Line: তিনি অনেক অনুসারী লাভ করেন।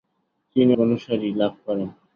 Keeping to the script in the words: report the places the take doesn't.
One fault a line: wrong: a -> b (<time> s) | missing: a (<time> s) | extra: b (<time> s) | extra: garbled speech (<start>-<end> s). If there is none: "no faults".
missing: অনেক (0.7 s)